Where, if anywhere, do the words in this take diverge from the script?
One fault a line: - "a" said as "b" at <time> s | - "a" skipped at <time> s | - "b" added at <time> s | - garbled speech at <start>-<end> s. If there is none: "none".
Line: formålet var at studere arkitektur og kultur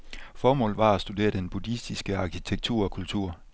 - "den buddhistiske" added at 1.3 s